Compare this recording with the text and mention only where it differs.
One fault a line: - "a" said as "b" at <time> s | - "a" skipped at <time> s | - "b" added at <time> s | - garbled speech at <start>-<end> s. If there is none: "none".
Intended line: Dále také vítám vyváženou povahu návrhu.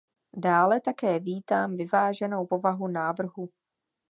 none